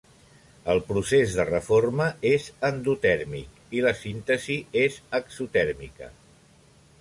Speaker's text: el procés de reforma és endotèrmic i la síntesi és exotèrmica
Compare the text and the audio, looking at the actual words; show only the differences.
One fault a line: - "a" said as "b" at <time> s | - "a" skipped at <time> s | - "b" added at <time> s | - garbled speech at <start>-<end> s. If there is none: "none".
none